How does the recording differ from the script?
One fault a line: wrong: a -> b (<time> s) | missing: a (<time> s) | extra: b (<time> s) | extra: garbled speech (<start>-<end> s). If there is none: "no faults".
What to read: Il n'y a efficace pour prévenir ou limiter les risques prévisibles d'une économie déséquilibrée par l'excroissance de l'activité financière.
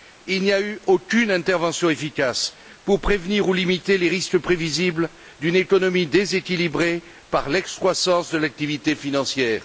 extra: eu aucune intervention (0.6 s)